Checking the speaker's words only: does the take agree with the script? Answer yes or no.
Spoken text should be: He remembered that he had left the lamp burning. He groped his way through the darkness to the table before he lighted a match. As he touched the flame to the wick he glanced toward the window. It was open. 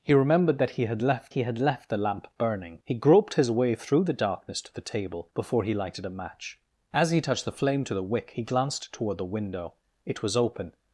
no